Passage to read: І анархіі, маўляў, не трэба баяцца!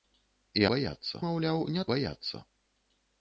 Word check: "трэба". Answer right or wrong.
wrong